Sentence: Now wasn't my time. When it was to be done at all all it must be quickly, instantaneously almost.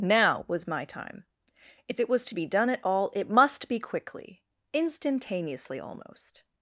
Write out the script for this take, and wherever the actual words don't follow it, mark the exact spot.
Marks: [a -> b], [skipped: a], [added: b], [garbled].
Now [wasn't -> was] my time. [When -> If] it was to be done at all [skipped: all] it must be quickly, instantaneously almost.